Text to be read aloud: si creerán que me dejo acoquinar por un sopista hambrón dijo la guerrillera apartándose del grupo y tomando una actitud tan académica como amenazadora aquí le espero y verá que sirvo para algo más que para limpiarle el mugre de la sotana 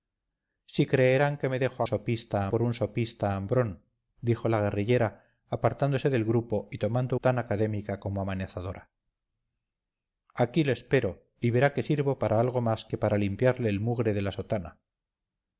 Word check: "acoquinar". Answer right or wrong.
wrong